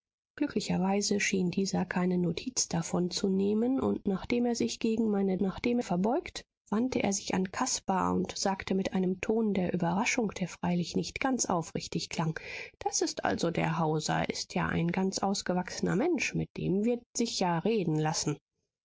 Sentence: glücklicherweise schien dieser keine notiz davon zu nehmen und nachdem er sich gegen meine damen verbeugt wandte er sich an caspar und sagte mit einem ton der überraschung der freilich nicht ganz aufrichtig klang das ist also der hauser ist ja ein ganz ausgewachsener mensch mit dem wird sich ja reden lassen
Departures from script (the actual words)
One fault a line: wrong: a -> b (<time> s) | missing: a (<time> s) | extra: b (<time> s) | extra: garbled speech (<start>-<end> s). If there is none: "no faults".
wrong: damen -> nachdem (5.4 s)